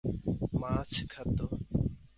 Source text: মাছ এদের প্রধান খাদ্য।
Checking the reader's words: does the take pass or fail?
fail